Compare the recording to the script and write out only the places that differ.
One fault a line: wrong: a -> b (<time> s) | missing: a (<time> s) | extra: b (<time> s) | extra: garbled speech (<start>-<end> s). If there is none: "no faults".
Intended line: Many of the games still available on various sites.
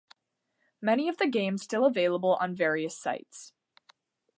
no faults